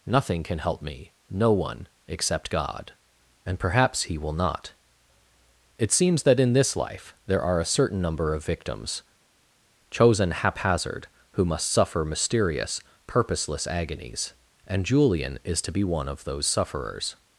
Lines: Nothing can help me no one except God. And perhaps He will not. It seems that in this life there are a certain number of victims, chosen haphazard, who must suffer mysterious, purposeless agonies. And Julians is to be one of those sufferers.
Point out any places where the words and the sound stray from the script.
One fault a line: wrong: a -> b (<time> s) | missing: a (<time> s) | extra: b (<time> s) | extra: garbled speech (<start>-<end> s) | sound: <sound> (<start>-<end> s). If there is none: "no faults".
wrong: Julians -> Julian (14.8 s)